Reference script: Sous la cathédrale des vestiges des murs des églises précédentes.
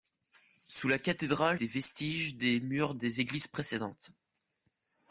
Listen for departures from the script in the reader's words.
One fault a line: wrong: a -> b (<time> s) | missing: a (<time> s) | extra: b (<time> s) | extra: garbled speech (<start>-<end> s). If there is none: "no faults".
no faults